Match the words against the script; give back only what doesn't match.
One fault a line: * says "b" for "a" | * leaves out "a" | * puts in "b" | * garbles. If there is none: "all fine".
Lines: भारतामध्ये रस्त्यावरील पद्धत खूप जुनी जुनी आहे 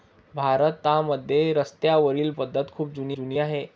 all fine